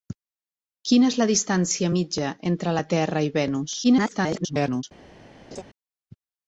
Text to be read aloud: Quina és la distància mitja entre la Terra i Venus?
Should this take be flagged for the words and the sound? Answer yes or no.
yes